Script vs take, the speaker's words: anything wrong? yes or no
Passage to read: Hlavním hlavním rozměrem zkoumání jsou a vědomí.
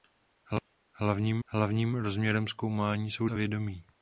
no